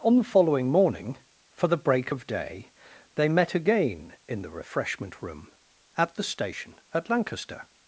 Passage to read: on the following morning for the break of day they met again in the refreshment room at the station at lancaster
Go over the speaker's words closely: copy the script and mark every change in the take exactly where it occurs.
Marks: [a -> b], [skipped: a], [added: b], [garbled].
on the following morning for the break of day they met again in the refreshment room at the station at lancaster